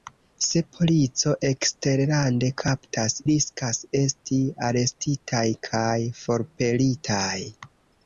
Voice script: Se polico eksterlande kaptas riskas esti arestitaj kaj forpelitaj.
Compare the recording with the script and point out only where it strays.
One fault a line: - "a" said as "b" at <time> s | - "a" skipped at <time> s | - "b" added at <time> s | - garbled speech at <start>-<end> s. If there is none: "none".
none